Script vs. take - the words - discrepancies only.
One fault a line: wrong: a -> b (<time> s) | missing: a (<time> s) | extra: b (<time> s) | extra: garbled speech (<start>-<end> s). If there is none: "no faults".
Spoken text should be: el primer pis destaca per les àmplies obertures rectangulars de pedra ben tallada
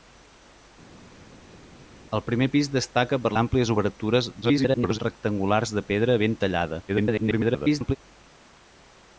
missing: les (3.3 s)
extra: garbled speech (4.4-5.0 s)
extra: garbled speech (6.9-8.0 s)